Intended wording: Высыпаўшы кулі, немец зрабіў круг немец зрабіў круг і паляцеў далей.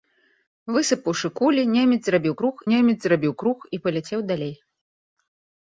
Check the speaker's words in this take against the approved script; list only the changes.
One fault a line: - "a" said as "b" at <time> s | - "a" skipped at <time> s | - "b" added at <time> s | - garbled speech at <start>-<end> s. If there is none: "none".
none